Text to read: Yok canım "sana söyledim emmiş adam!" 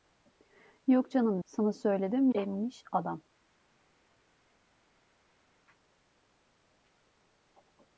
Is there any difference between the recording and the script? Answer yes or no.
no